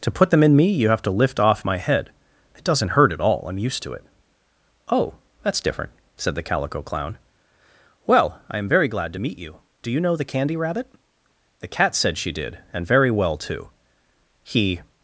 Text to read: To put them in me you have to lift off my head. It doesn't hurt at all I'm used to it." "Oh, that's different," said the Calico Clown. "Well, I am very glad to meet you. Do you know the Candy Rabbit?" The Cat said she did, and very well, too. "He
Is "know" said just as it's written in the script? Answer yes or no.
yes